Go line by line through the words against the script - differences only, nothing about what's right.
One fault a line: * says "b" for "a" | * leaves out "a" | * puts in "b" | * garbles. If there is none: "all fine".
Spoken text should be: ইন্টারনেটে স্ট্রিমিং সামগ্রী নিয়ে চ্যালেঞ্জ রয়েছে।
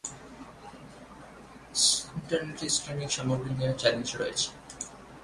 all fine